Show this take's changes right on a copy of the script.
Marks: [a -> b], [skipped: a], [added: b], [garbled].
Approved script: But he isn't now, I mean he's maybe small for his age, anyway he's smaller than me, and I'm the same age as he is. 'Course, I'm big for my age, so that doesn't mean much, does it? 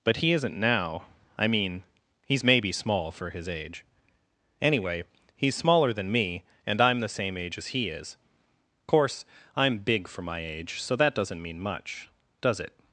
But he isn't now, I mean he's maybe small for his age, anyway he's smaller than me, and I'm the same age as he is. 'Course, I'm big for my age, so that doesn't mean much, does it?